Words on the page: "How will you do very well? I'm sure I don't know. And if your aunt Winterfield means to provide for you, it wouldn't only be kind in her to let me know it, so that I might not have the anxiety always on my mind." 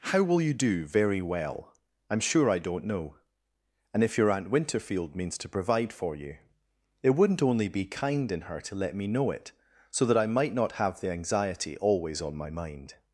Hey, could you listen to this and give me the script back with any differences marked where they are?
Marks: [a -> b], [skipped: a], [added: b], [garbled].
"How will you do very well? I'm sure I don't know. And if your aunt Winterfield means to provide for you, it wouldn't only be kind in her to let me know it, so that I might not have the anxiety always on my mind."